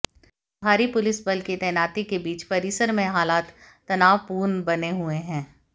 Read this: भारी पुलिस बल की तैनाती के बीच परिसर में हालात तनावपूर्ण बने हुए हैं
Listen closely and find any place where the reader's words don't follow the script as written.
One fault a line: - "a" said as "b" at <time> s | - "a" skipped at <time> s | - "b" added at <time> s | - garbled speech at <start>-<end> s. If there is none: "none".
none